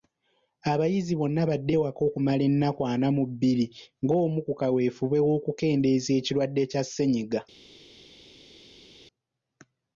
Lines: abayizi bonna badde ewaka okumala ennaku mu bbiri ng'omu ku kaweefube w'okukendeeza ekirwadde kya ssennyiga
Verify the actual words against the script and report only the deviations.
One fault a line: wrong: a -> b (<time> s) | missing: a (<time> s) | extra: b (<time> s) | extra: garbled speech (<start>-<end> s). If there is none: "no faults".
extra: ana (2.9 s)